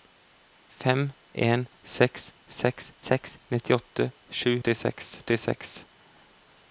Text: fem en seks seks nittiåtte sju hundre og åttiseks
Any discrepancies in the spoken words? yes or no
yes